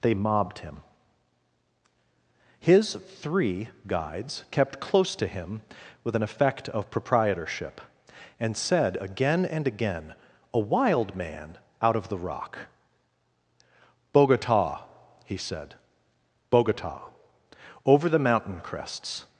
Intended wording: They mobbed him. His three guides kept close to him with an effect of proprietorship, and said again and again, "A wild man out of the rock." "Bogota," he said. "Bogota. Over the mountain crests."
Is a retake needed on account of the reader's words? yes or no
no